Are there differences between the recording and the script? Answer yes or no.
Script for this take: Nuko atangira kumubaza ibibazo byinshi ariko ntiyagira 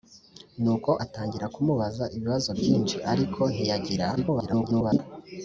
yes